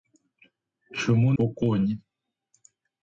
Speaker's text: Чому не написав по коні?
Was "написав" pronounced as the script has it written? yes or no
no